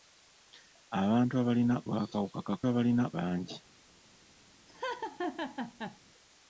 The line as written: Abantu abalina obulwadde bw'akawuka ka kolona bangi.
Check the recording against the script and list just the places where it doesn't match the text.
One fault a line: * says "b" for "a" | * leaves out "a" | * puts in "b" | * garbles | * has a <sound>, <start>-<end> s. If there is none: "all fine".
* leaves out "obulwadde"
* says "abalina" for "kolona"
* has a laugh, 4.7-6.0 s